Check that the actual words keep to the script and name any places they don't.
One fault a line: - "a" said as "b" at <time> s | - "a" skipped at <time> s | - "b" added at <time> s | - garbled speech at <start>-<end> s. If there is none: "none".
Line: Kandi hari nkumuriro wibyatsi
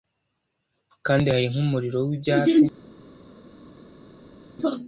none